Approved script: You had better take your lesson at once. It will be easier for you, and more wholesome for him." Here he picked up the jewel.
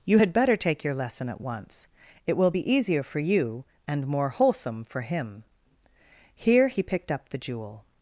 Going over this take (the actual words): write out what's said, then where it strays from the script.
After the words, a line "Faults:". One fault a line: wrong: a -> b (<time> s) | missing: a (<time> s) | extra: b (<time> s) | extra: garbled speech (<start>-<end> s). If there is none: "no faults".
You had better take your lesson at once. It will be easier for you, and more wholesome for him." Here he picked up the jewel.
Faults:
no faults